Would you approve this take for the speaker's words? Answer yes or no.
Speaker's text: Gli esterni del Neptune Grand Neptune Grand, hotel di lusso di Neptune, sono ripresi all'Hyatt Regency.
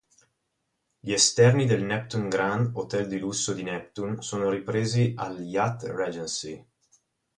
no